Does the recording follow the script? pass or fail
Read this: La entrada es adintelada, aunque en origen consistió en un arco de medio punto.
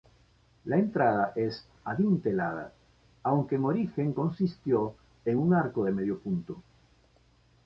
pass